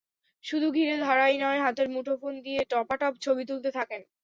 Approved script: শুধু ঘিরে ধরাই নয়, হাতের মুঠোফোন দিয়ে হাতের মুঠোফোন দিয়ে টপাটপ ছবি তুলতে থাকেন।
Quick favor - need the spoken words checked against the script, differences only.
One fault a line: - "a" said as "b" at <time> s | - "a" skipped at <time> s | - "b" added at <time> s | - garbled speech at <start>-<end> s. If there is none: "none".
- "হাতের মুঠোফোন দিয়ে" skipped at 2.6 s